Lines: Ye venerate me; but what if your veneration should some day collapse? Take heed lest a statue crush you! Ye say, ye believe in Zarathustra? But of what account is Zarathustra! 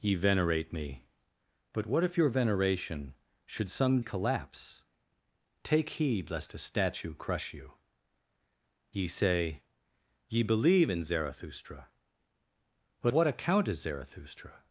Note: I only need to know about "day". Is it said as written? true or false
false